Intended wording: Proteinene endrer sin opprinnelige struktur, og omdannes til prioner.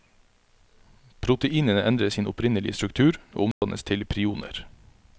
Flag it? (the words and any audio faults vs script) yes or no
yes